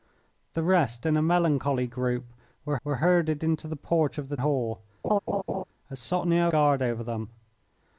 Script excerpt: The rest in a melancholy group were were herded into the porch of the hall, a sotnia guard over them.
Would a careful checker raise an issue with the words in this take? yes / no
no